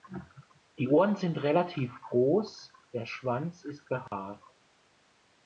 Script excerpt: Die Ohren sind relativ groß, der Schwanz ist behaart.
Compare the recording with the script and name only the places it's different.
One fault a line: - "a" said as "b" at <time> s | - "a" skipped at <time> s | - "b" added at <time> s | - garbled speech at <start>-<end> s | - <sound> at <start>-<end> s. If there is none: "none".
- dropout at 4.1-4.1 s